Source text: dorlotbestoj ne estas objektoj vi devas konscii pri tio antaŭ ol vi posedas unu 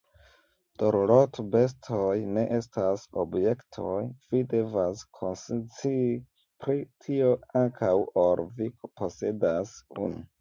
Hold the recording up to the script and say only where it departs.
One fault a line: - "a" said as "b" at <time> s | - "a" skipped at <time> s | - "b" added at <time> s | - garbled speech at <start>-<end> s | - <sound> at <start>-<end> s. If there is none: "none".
none